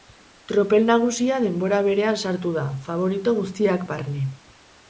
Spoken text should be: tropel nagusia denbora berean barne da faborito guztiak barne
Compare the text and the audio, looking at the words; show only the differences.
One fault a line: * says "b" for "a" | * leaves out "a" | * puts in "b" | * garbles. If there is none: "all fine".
* says "sartu" for "barne"